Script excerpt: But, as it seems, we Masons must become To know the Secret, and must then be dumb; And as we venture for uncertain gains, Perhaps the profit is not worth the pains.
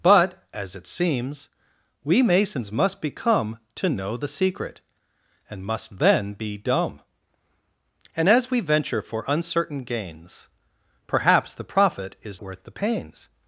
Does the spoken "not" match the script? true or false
false